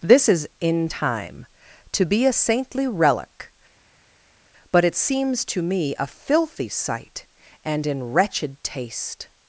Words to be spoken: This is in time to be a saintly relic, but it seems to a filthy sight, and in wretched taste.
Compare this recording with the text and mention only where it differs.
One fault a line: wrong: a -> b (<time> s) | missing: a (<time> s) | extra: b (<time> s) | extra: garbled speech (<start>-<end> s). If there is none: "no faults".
extra: me (5.6 s)